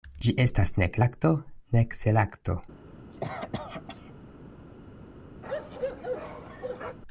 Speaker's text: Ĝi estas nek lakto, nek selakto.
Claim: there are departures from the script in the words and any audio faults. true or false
true